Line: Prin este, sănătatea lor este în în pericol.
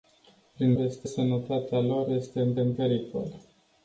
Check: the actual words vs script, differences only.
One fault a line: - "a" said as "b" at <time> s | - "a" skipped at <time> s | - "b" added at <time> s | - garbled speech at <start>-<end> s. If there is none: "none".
none